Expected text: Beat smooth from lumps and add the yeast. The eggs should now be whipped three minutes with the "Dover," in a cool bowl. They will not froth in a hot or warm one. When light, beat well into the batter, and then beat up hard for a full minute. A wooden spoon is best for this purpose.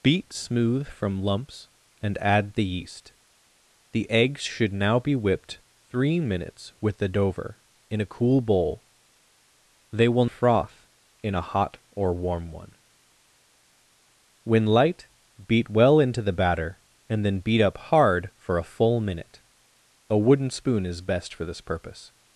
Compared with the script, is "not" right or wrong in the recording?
wrong